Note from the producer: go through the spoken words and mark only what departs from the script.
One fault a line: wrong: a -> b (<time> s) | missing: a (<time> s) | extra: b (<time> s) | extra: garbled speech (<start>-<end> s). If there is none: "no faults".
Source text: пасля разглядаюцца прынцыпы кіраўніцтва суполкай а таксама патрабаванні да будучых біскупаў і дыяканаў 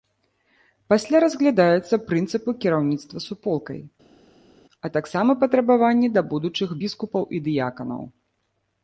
no faults